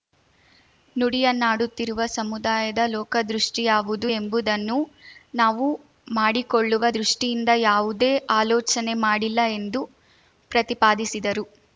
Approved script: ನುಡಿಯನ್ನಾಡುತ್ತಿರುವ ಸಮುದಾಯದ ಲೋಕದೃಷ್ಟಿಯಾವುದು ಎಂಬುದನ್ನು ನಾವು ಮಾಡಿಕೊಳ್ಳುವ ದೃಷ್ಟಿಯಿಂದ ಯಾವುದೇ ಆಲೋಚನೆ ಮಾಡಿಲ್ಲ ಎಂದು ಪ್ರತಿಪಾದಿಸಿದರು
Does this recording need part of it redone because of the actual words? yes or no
no